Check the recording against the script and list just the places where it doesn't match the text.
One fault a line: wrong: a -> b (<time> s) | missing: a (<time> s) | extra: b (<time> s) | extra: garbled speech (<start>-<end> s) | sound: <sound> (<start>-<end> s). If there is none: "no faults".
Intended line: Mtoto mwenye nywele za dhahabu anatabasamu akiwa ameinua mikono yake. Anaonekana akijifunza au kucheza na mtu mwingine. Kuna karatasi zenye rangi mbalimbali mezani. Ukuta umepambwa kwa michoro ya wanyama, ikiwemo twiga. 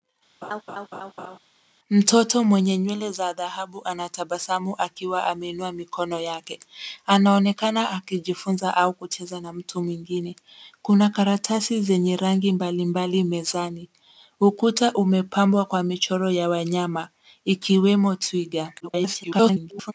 sound: laugh (0.4-1.4 s)
extra: garbled speech (18.8-19.9 s)